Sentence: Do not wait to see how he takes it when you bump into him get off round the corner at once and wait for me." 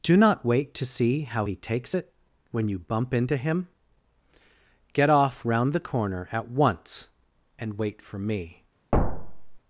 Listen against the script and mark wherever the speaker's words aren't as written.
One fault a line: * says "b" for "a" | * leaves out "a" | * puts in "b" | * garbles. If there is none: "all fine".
all fine